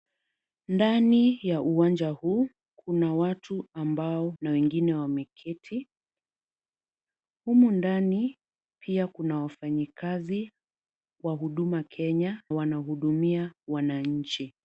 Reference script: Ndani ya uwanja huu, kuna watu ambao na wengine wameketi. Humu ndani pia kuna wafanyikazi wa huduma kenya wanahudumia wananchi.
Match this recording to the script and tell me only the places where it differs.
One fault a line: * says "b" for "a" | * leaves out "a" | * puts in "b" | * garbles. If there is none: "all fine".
all fine